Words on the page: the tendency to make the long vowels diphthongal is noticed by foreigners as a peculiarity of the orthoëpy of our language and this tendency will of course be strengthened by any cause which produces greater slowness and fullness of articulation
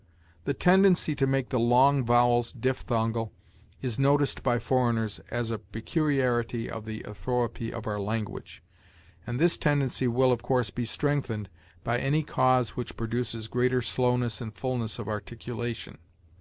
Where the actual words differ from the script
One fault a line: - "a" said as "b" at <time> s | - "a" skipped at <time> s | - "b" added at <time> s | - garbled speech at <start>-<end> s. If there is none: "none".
none